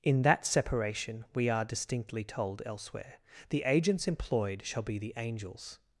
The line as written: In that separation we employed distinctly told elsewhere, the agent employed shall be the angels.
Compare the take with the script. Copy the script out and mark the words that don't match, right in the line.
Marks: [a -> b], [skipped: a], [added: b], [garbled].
In that separation we [employed -> are] distinctly told elsewhere, the [agent -> agents] employed shall be the angels.